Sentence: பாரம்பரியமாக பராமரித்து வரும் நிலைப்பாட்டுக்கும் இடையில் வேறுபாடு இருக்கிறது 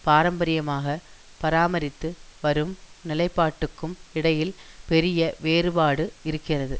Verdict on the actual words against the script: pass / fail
fail